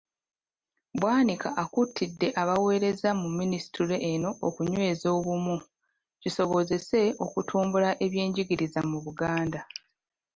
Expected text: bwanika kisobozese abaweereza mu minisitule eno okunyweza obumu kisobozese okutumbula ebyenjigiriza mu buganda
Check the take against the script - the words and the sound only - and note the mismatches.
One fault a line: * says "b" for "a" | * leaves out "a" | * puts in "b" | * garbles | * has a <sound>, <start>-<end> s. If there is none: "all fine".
* says "akuutidde" for "kisobozese"